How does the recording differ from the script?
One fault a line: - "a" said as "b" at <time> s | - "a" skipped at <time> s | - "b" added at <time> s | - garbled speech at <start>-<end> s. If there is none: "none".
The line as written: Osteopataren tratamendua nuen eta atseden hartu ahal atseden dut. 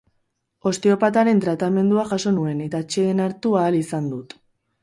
- "jaso" added at 2.1 s
- "atseden" said as "izan" at 3.8 s